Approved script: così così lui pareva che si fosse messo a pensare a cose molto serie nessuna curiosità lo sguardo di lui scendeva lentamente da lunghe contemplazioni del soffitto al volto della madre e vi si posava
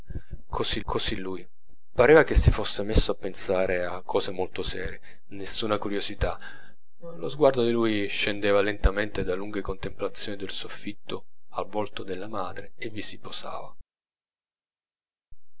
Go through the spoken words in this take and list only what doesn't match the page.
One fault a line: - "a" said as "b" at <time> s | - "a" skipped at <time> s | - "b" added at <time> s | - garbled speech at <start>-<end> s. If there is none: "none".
none